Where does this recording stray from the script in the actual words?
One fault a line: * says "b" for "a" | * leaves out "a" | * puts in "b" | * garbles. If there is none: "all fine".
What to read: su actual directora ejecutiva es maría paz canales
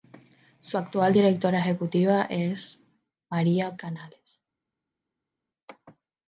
* leaves out "paz"